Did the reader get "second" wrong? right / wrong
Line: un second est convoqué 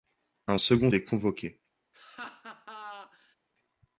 right